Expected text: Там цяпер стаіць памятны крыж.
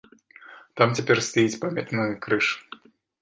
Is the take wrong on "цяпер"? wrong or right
right